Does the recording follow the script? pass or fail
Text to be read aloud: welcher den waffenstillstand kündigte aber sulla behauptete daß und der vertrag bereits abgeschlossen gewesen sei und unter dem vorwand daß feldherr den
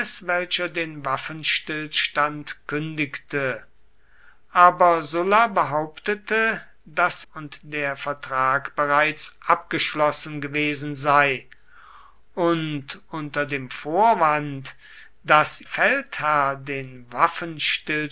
pass